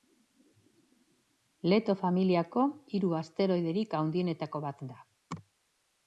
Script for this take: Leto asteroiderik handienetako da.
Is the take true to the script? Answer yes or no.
no